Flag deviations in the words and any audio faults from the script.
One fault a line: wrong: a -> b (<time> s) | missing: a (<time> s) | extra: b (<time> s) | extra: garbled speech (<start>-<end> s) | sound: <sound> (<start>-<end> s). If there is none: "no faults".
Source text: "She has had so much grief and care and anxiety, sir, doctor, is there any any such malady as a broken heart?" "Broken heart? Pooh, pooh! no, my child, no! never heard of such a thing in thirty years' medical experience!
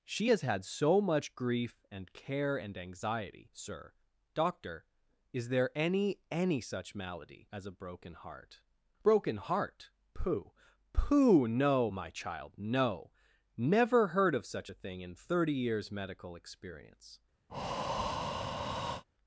sound: breath (17.5-19.0 s)